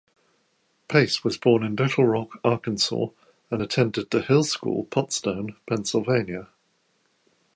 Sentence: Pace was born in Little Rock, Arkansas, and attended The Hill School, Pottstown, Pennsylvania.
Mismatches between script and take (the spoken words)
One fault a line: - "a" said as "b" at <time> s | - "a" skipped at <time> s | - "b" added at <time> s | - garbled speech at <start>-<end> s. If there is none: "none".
none